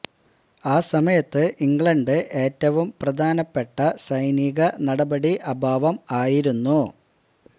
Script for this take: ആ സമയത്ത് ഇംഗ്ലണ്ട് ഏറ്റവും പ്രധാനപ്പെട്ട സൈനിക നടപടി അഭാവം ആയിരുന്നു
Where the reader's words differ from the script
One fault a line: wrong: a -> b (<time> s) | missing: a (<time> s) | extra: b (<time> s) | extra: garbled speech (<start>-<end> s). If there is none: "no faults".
no faults